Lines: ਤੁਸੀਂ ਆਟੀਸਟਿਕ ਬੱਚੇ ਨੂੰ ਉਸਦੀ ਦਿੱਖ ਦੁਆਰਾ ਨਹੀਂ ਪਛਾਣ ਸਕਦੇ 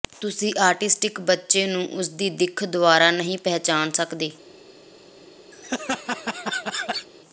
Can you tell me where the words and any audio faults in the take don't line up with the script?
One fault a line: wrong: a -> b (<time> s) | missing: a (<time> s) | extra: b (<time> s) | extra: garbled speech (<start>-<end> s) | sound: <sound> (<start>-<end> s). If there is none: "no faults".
sound: laugh (5.5-7.1 s)